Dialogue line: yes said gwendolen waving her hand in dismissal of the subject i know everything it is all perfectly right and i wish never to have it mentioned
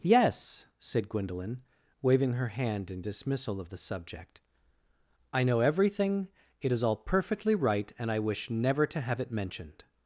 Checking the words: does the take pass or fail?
pass